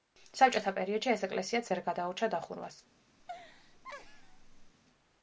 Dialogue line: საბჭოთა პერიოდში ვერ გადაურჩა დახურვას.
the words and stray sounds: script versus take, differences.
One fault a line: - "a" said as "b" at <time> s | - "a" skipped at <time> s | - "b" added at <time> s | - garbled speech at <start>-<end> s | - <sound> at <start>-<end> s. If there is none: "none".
- "ეს ეკლესიაც" added at 1.1 s
- laugh at 3.2-4.7 s